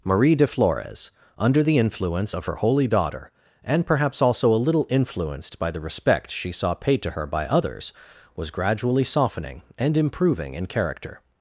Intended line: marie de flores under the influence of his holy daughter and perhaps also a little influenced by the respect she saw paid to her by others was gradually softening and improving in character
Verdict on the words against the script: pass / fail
fail